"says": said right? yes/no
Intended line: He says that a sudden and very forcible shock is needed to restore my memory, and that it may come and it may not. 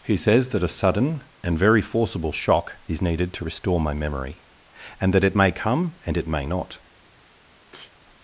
yes